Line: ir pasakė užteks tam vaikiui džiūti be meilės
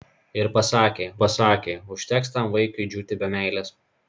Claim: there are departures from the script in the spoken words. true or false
true